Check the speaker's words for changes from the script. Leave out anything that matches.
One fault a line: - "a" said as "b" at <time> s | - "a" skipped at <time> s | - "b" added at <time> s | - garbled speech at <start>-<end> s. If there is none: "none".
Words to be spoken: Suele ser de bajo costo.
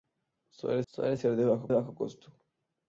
- "suele" added at 0.8 s
- "bajo" added at 1.7 s